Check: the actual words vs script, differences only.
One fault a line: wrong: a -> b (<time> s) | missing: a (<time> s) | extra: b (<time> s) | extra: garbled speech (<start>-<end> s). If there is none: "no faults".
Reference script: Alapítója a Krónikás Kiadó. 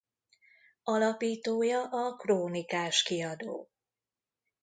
no faults